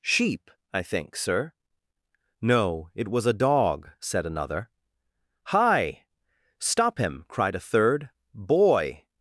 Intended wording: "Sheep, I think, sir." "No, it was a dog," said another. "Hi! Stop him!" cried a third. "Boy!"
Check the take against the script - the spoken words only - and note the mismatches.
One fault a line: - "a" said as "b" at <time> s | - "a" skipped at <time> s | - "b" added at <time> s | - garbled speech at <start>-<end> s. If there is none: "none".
none